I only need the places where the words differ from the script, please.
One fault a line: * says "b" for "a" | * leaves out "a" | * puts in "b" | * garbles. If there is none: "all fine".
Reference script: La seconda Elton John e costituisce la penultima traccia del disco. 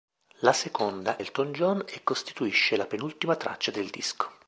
all fine